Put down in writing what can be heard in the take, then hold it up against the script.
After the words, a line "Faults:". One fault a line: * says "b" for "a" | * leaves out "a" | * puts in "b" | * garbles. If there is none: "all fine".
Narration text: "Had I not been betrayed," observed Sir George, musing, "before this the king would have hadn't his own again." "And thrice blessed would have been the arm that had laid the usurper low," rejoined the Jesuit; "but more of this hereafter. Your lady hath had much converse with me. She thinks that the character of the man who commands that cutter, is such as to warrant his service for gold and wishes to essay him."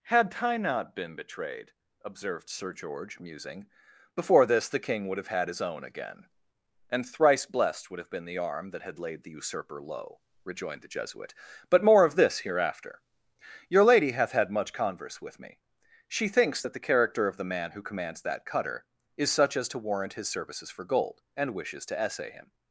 "Had I not been betrayed," observed Sir George, musing, "before this the king would have had his own again." "And thrice blessed would have been the arm that had laid the usurper low," rejoined the Jesuit; "but more of this hereafter. Your lady hath had much converse with me. She thinks that the character of the man who commands that cutter, is such as to warrant his services for gold and wishes to essay him."
Faults:
* says "had" for "hadn't"
* says "services" for "service"